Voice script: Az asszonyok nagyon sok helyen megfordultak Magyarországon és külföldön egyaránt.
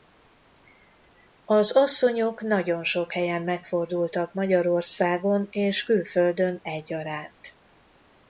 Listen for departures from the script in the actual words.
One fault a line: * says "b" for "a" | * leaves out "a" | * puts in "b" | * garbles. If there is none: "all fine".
all fine